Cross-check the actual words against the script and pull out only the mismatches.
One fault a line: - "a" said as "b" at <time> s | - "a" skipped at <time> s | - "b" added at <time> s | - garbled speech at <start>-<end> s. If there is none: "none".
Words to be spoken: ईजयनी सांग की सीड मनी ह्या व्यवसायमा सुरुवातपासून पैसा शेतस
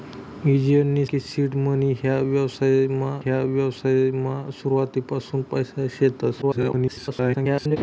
- "सांग" skipped at 1.1 s
- "ह्या व्यवसायमा" added at 3.2 s
- garbled speech at 6.4-7.8 s